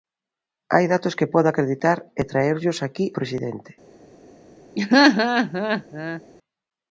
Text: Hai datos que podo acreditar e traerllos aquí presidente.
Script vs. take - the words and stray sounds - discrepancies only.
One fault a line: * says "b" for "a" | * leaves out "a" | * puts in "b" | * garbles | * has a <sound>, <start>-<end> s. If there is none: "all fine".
* has a laugh, 4.8-6.2 s